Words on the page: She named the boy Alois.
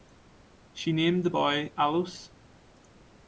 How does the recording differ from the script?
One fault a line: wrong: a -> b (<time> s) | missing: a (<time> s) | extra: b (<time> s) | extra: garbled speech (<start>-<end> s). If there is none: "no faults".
no faults